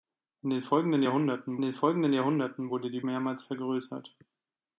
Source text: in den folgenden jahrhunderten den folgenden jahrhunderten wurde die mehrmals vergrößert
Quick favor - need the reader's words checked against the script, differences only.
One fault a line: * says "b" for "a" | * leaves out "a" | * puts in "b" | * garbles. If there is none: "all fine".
all fine